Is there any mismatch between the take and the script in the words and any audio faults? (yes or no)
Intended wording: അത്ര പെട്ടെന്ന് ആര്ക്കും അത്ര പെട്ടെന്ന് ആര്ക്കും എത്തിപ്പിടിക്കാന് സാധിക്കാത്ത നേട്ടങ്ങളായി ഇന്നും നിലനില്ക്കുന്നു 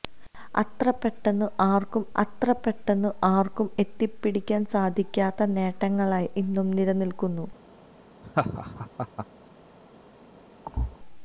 yes